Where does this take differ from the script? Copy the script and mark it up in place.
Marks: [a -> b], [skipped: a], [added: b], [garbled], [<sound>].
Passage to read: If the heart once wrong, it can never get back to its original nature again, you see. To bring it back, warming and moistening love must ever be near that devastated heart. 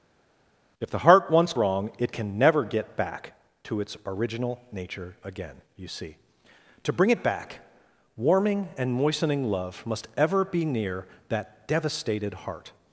If the heart once wrong, it can never get back to its original nature again, you see. To bring it back, warming and moistening love must ever be near that devastated heart.